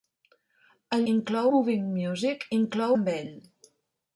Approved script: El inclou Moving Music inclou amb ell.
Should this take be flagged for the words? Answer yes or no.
no